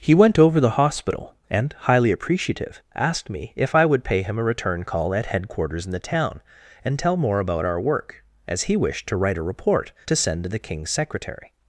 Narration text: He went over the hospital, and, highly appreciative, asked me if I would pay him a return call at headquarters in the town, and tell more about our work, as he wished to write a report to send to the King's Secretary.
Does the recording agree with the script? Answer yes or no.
yes